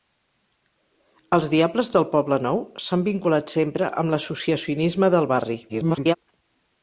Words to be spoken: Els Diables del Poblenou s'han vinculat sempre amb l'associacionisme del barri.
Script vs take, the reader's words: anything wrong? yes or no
yes